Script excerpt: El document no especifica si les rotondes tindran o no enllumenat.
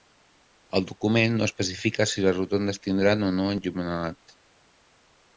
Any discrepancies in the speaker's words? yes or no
no